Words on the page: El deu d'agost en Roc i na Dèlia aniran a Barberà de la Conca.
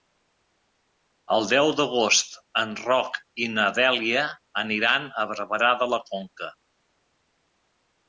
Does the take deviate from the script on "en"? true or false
false